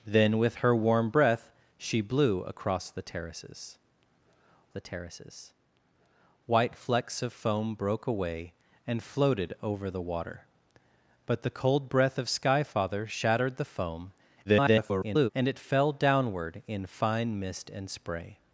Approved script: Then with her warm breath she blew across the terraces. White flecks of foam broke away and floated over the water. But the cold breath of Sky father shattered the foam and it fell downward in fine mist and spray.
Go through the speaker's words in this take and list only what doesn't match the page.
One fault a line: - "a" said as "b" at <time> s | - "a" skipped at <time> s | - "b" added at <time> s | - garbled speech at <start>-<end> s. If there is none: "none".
- "the terraces" added at 4.7 s
- garbled speech at 14.4-15.3 s